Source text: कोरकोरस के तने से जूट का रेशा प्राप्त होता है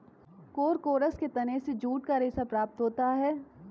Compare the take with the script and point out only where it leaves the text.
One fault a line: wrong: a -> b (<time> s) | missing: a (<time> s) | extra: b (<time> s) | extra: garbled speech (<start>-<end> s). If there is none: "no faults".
no faults